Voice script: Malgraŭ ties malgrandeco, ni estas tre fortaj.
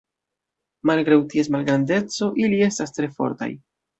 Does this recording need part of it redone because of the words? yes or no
yes